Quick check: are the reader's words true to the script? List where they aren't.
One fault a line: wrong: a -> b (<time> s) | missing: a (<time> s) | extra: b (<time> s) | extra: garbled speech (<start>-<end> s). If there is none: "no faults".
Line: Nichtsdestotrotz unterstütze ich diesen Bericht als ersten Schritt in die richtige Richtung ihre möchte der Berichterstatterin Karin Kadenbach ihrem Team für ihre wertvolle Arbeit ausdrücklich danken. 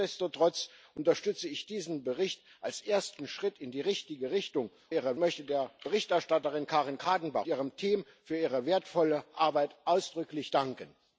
no faults